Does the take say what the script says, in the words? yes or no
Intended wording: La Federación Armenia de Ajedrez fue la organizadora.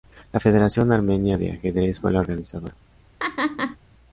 yes